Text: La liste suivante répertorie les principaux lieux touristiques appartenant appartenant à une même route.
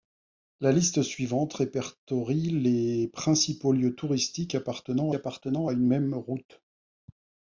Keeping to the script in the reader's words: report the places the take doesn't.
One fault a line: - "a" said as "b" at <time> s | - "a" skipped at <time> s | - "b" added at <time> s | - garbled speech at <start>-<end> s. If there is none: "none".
none